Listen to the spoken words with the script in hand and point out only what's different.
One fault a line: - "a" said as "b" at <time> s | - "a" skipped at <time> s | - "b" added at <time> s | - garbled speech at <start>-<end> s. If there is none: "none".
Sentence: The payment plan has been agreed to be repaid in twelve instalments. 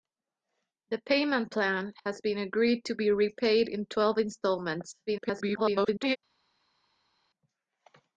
- garbled speech at 5.1-6.2 s